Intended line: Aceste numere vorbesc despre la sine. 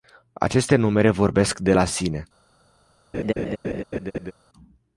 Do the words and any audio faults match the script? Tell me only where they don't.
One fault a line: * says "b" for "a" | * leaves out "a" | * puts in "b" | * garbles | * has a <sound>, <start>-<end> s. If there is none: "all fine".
* says "de" for "despre"
* has a laugh, 3.1-4.3 s